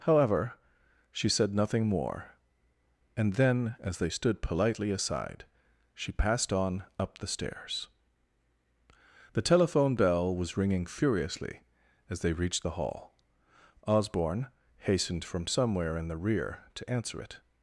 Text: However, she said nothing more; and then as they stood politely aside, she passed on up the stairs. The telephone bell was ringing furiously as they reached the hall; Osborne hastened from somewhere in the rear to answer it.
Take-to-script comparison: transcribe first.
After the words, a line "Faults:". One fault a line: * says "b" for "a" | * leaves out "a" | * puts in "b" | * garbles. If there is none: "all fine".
However, she said nothing more; and then as they stood politely aside, she passed on up the stairs. The telephone bell was ringing furiously as they reached the hall; Osborne hastened from somewhere in the rear to answer it.
Faults:
all fine